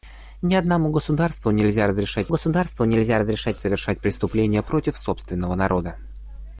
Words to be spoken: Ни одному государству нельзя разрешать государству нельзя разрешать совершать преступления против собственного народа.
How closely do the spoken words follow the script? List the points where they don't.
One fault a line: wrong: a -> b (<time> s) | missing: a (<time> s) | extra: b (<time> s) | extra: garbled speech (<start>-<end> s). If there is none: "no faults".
no faults